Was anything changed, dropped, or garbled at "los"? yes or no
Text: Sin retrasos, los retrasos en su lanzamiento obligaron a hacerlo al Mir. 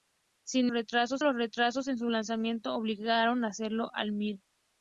no